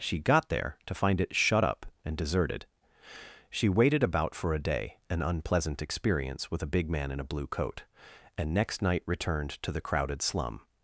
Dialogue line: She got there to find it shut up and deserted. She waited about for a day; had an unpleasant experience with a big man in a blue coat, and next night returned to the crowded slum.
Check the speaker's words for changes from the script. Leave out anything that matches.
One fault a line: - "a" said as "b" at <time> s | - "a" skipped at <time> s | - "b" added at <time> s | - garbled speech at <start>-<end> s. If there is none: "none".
- "had" skipped at 5.0 s